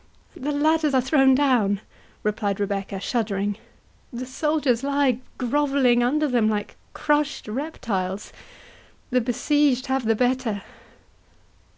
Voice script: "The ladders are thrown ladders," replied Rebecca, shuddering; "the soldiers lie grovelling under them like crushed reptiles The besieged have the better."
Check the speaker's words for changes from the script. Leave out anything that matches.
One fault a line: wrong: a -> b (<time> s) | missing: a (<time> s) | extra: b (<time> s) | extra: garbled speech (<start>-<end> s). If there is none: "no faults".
wrong: ladders -> down (1.3 s)